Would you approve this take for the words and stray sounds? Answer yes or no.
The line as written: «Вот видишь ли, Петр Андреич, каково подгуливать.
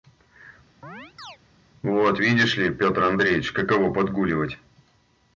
no